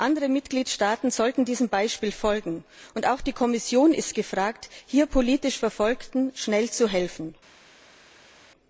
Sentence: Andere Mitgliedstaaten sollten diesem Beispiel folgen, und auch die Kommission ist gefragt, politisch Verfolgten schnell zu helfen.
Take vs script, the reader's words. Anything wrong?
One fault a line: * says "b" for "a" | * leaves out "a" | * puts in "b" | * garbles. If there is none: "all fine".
* puts in "hier"